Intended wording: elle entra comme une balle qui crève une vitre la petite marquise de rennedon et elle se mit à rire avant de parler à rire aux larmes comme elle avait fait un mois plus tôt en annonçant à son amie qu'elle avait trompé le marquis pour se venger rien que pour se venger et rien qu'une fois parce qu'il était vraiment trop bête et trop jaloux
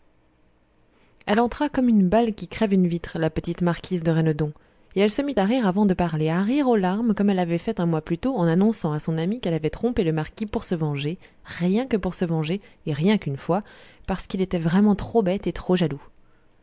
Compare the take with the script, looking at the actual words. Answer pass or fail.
pass